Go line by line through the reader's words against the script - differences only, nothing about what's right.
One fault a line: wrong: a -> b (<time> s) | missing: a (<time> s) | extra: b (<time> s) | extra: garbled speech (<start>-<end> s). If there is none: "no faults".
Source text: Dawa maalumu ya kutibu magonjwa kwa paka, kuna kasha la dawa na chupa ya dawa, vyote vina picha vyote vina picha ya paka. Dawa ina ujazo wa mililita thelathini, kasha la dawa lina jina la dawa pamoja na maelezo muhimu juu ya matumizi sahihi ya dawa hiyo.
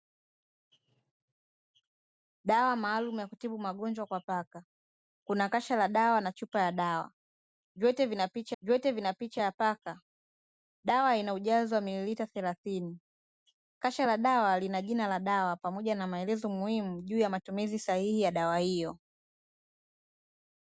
no faults